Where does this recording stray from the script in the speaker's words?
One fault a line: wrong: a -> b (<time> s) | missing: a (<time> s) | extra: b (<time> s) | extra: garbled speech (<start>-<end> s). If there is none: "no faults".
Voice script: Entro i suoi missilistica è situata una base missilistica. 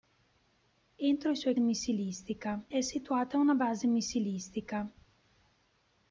no faults